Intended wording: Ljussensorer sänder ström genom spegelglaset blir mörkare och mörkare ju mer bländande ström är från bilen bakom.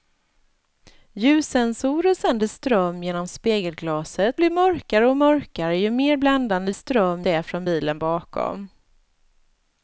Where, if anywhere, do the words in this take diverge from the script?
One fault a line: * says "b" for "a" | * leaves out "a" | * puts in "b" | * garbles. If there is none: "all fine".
all fine